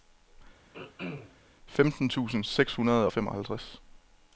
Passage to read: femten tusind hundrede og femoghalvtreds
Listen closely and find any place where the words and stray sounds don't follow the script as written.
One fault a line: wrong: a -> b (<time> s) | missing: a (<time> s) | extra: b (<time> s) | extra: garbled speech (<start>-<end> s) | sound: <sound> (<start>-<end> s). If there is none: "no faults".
sound: throat clearing (0.7-1.4 s)
extra: seks (2.4 s)